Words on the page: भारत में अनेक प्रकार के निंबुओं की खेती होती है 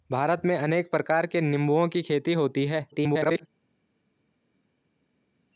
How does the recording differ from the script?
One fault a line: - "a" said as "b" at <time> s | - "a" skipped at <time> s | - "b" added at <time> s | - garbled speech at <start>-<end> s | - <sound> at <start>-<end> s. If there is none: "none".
- garbled speech at 2.9-3.5 s